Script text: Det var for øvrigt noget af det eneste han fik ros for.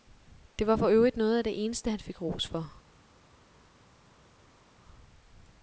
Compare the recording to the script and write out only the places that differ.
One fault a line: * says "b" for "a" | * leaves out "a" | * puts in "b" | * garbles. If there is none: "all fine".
all fine